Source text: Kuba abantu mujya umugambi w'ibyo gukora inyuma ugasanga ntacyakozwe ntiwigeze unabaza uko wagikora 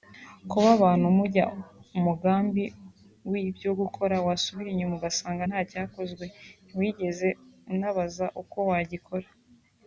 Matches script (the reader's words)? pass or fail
fail